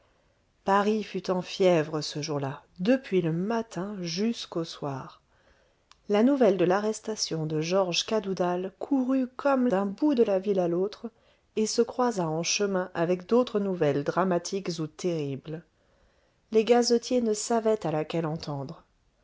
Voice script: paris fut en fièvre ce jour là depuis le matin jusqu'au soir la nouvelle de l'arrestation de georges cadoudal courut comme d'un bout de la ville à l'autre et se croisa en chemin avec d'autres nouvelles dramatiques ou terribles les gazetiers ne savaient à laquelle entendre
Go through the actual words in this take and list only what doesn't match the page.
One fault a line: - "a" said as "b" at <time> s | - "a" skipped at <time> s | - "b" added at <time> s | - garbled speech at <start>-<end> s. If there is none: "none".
none